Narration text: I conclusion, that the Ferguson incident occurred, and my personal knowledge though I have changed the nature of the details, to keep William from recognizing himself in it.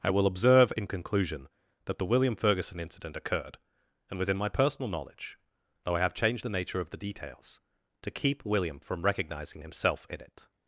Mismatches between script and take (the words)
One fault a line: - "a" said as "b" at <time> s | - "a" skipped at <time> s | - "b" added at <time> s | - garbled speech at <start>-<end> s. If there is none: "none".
- "will observe in" added at 0.1 s
- "William" added at 2.0 s
- "within" added at 4.2 s